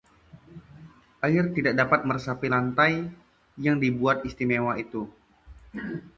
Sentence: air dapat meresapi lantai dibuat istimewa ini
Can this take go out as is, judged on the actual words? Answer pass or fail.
fail